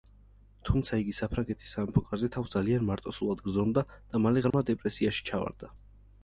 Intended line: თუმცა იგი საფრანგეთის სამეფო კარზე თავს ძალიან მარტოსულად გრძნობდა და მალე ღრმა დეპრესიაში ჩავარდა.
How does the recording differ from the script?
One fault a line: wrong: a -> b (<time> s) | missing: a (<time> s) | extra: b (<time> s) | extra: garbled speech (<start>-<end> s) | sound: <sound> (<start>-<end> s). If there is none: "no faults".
sound: dropout (4.5-4.5 s)